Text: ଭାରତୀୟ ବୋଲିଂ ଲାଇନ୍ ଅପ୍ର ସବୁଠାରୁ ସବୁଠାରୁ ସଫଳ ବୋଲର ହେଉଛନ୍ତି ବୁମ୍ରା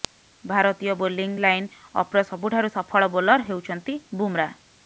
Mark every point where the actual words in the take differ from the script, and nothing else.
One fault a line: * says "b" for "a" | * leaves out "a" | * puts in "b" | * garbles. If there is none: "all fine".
* leaves out "ସବୁଠାରୁ"